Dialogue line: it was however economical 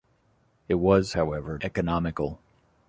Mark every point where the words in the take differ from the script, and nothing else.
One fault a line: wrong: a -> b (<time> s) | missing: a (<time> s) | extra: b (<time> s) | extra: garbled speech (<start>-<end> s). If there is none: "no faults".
no faults